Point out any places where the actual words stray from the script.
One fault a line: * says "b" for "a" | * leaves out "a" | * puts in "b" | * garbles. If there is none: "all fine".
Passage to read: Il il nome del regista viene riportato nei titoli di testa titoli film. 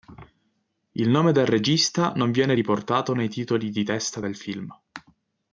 * leaves out "il"
* puts in "non"
* says "del" for "titoli"